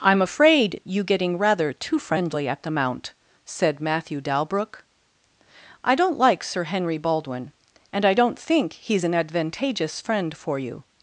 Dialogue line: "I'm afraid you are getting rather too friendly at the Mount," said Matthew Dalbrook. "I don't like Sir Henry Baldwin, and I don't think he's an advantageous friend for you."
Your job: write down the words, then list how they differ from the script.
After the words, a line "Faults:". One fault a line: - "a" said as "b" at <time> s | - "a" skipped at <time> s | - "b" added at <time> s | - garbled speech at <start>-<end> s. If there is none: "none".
"I'm afraid you getting rather too friendly at the Mount," said Matthew Dalbrook. "I don't like Sir Henry Baldwin, and I don't think he's an advantageous friend for you."
Faults:
- "are" skipped at 1.0 s